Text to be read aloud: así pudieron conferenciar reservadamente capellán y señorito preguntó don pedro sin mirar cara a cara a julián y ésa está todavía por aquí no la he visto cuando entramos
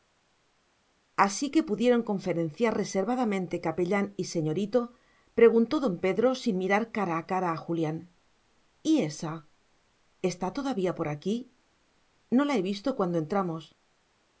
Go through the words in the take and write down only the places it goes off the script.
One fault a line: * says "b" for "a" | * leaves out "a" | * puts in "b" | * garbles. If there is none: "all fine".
* puts in "que"